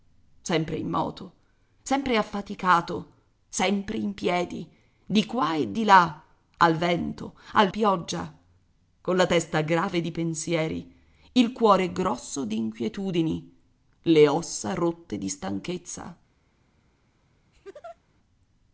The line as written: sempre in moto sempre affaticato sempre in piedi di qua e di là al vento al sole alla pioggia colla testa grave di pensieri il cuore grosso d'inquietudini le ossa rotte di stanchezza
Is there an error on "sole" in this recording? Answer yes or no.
yes